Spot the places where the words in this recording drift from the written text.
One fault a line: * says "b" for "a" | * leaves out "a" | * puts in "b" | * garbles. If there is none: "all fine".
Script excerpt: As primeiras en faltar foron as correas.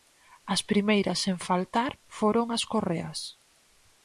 all fine